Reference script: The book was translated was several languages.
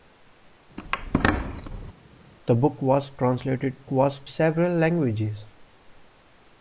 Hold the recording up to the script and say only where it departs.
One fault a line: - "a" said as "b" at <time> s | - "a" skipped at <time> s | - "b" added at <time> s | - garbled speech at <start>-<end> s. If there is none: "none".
none